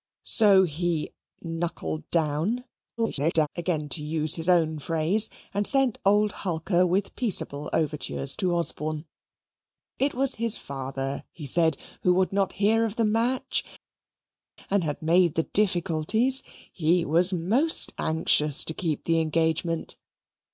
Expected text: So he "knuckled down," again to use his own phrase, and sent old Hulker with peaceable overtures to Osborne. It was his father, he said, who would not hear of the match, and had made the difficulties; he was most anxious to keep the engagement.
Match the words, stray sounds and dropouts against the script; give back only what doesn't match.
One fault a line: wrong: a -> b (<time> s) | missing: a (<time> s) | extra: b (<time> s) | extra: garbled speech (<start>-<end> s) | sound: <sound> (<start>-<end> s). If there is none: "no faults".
extra: garbled speech (3.0-3.5 s)